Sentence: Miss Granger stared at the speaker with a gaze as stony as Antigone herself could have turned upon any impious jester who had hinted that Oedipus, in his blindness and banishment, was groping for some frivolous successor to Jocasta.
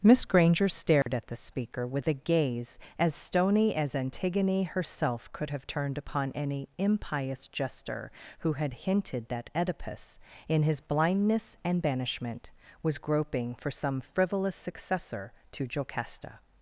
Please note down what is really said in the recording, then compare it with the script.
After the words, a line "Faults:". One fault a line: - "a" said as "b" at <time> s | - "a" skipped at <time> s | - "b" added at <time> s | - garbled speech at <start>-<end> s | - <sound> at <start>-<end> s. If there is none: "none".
Miss Granger stared at the speaker with a gaze as stony as Antigone herself could have turned upon any impious jester who had hinted that Oedipus, in his blindness and banishment, was groping for some frivolous successor to Jocasta.
Faults:
- dropout at 1.0-1.1 s